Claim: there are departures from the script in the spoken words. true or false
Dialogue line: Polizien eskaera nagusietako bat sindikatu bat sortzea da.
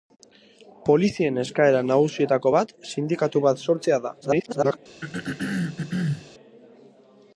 true